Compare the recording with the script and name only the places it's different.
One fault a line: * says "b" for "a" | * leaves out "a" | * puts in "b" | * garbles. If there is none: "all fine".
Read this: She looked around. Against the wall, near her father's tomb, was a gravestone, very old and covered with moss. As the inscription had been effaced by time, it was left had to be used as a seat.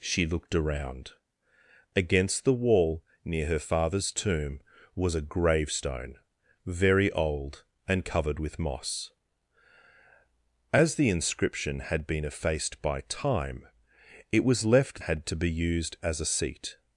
all fine